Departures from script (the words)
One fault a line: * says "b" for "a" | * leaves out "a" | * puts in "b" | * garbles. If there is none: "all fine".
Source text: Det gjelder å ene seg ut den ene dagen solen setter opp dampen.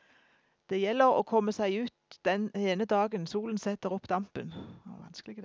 * says "komme" for "ene"